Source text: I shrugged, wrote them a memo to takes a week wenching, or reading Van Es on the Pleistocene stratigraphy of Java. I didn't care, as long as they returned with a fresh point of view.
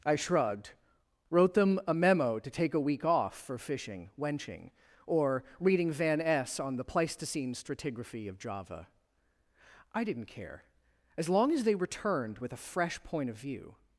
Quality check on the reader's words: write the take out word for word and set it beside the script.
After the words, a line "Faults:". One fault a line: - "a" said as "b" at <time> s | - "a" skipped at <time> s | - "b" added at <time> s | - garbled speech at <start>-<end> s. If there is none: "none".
I shrugged, wrote them a memo to take a week off for fishing, wenching, or reading Van Es on the Pleistocene stratigraphy of Java. I didn't care, as long as they returned with a fresh point of view.
Faults:
- "takes" said as "take" at 2.5 s
- "off for fishing" added at 3.0 s